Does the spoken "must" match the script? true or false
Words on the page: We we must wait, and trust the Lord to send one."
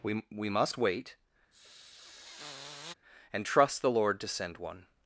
true